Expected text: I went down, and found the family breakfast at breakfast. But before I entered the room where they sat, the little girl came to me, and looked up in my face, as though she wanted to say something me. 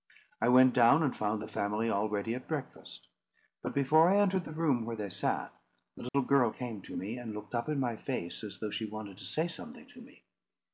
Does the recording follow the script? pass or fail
fail